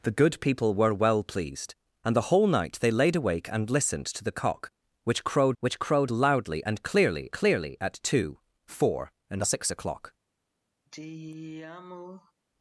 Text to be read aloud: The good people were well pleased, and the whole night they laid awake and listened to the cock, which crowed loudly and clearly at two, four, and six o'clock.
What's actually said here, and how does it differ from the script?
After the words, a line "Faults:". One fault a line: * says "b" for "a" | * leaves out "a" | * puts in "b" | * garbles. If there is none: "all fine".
The good people were well pleased, and the whole night they laid awake and listened to the cock, which crowed which crowed loudly and clearly clearly at two, four, and six o'clock.
Faults:
* puts in "which crowed"
* puts in "clearly"